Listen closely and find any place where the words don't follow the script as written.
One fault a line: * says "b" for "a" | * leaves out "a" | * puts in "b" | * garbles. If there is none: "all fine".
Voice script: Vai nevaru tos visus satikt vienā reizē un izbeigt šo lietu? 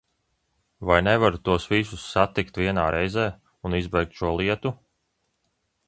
all fine